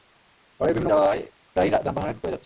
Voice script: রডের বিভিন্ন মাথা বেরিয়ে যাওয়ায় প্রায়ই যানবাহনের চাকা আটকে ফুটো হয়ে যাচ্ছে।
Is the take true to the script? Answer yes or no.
no